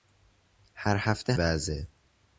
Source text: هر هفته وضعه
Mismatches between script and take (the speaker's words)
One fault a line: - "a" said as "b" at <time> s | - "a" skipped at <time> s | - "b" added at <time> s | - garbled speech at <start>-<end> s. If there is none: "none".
none